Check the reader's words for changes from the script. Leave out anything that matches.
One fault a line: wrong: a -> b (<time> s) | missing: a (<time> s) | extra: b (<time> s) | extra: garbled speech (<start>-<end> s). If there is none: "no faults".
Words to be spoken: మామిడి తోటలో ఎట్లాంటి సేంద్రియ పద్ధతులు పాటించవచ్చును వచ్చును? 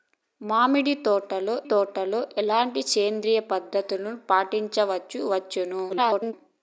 extra: తోటలో (1.7 s)
extra: garbled speech (5.9-6.3 s)